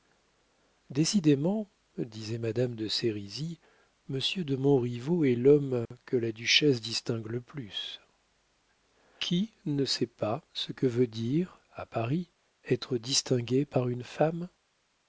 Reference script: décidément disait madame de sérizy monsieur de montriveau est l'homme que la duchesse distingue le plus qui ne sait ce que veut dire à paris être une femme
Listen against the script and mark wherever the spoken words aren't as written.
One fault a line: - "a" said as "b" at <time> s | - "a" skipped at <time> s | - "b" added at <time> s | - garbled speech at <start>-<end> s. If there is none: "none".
- "pas" added at 10.1 s
- "distingué par" added at 13.0 s